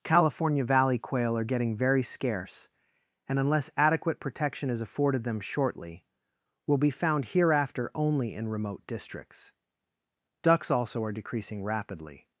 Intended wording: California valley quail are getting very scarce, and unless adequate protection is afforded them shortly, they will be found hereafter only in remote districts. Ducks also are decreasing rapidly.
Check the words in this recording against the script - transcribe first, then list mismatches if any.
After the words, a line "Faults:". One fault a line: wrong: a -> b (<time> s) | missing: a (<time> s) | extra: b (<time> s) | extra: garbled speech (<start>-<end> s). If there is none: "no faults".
California valley quail are getting very scarce, and unless adequate protection is afforded them shortly, will be found hereafter only in remote districts. Ducks also are decreasing rapidly.
Faults:
missing: they (6.0 s)